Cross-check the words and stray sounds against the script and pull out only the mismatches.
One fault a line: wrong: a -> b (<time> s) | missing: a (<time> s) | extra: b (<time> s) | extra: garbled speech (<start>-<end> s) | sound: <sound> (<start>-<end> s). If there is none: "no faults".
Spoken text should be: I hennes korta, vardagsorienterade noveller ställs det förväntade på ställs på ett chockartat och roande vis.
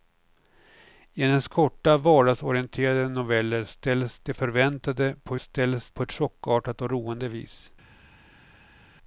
no faults